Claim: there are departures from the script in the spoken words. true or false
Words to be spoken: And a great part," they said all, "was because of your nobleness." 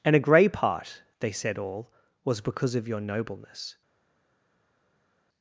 true